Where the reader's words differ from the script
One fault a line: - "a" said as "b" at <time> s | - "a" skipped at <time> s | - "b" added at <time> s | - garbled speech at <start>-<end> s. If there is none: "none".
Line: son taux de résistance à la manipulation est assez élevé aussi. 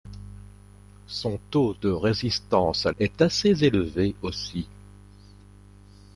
- "la manipulation" skipped at 2.9 s